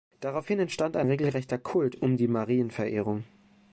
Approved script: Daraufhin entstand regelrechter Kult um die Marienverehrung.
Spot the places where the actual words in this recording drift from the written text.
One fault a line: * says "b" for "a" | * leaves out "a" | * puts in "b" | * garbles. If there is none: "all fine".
* puts in "ein"